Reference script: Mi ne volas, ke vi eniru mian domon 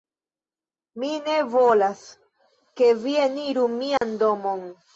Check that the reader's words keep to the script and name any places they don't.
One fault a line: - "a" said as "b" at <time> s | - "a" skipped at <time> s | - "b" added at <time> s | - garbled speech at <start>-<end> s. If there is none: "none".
none